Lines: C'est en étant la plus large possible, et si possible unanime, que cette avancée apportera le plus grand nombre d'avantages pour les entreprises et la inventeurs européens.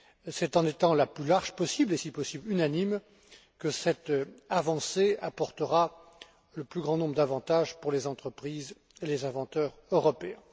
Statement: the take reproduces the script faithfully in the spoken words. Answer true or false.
false